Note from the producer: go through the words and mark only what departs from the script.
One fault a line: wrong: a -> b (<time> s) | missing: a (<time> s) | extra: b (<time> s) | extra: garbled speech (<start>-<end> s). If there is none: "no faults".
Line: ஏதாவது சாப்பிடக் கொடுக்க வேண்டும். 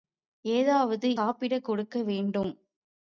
no faults